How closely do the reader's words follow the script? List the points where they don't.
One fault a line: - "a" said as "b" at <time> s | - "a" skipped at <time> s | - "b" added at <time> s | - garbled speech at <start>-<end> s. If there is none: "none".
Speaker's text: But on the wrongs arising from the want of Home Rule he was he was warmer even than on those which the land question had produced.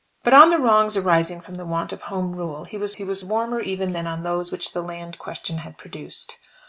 none